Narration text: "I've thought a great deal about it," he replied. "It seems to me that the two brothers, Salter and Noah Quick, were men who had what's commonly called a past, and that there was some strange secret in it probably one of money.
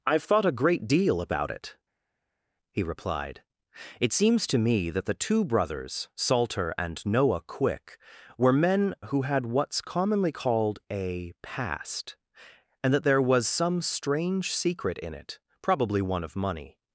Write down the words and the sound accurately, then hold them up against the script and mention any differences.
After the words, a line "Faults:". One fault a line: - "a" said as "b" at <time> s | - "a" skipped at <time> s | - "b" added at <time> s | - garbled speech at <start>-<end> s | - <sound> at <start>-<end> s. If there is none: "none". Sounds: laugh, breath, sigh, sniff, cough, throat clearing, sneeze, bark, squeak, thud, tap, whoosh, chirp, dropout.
"I've thought a great deal about it," he replied. "It seems to me that the two brothers, Salter and Noah Quick, were men who had what's commonly called a past, and that there was some strange secret in it probably one of money.
Faults:
none